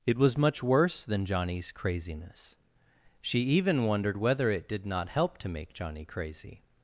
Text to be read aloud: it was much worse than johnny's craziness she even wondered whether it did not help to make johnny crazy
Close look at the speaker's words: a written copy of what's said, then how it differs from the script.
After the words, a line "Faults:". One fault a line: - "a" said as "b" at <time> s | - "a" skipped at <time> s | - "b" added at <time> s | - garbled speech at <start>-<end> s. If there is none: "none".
it was much worse than johnny's craziness she even wondered whether it did not help to make johnny crazy
Faults:
none